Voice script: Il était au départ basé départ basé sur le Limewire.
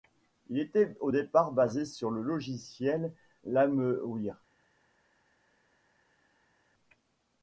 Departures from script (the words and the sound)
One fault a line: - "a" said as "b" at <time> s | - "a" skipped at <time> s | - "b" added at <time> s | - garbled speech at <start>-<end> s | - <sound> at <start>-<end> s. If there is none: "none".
- "départ basé" skipped at 1.8 s
- "logiciel" added at 2.2 s